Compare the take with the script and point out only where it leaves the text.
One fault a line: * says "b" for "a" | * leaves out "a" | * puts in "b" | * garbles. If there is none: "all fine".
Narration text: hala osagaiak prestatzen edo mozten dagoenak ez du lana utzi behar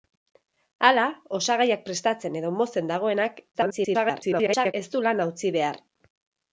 * garbles